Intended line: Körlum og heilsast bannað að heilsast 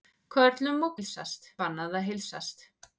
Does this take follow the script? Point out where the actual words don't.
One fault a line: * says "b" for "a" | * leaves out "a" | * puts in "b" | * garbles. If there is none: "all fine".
all fine